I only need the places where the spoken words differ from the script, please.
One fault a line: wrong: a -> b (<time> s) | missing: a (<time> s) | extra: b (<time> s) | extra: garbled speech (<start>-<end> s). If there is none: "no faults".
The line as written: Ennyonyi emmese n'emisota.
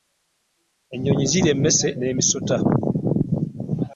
extra: zirya (1.3 s)